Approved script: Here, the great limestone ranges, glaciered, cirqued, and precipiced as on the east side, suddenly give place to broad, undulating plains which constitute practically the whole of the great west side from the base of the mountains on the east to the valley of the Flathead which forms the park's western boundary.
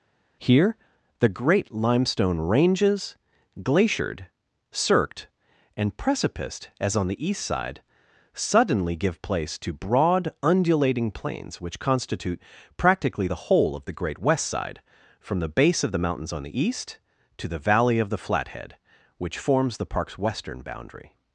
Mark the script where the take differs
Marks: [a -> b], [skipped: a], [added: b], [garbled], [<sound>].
Here, the great limestone ranges, glaciered, cirqued, and precipiced as on the east side, suddenly give place to broad, undulating plains which constitute practically the whole of the great west side from the base of the mountains on the east to the valley of the Flathead which forms the park's western boundary.